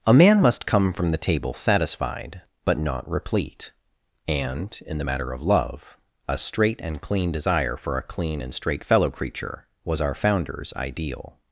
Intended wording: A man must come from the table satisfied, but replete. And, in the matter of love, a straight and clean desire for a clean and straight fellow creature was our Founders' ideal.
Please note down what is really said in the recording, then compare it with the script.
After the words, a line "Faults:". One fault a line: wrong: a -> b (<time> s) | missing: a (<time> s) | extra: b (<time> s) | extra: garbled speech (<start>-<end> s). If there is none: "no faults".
A man must come from the table satisfied, but not replete. And, in the matter of love, a straight and clean desire for a clean and straight fellow creature was our Founders' ideal.
Faults:
extra: not (2.8 s)